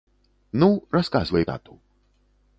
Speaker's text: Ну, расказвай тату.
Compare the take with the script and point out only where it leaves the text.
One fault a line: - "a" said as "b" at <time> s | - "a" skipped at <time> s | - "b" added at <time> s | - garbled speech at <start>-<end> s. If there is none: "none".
none